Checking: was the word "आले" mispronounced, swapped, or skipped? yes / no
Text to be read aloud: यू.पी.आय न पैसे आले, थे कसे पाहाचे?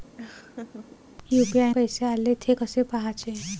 no